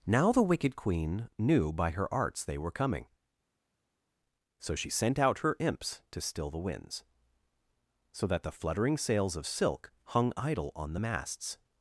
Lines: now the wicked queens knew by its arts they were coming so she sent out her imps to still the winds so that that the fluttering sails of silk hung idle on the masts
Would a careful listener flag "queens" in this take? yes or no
yes